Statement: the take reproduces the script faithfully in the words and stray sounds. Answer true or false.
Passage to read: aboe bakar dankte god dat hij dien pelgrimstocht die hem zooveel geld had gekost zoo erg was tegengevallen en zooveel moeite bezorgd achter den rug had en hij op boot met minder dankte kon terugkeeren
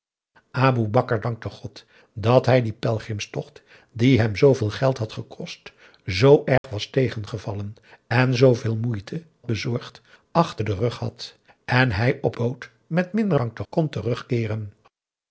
false